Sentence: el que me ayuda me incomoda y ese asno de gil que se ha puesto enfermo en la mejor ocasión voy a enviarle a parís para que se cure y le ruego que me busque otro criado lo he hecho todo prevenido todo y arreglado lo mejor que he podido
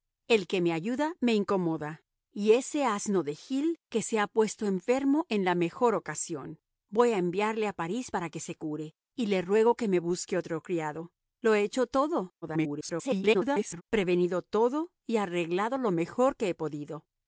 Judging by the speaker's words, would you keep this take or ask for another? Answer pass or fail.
fail